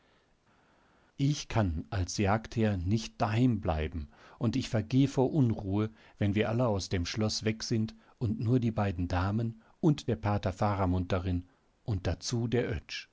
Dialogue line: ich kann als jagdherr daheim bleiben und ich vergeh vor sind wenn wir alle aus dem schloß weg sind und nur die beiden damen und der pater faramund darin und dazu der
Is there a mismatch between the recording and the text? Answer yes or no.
yes